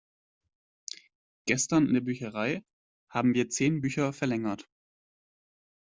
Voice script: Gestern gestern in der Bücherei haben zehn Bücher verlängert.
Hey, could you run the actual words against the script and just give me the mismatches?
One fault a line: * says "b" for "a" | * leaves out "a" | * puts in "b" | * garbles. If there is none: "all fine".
* leaves out "gestern"
* puts in "wir"